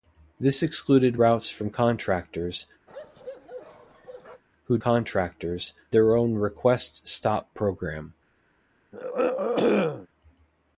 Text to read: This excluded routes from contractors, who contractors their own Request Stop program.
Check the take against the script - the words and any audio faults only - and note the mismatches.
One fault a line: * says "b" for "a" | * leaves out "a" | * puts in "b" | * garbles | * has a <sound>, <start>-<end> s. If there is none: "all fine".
* has a bark, 2.9-4.4 s
* has a throat clearing, 8.9-10.1 s